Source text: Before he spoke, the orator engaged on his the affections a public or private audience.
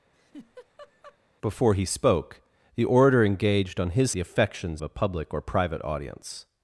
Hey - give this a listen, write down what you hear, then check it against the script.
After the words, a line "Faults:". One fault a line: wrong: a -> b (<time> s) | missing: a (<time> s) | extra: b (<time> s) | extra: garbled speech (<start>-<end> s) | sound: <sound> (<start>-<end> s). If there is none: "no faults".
Before he spoke, the orator engaged on his the affections a public or private audience.
Faults:
sound: laugh (0.1-1.2 s)